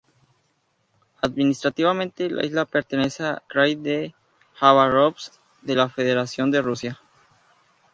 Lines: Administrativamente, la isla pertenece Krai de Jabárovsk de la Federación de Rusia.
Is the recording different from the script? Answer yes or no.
no